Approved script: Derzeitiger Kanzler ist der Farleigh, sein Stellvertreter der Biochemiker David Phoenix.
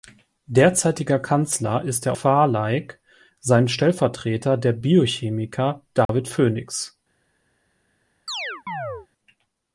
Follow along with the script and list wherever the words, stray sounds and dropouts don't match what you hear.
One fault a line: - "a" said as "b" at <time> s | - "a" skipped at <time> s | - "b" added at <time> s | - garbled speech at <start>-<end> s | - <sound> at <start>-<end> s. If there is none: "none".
- dropout at 6.1-6.1 s
- chirp at 8.3-9.1 s